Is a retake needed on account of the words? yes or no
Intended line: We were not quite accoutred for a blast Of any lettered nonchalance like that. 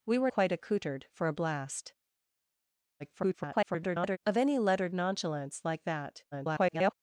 yes